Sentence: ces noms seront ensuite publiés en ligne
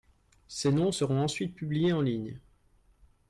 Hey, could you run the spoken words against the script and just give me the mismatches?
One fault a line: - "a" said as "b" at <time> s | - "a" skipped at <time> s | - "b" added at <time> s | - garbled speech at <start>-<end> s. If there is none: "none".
none